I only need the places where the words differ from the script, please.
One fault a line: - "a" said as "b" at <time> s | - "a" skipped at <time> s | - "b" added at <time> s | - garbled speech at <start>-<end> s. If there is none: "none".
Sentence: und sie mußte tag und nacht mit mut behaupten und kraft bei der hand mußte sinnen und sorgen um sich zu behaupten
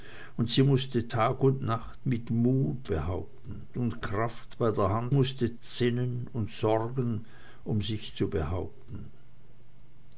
none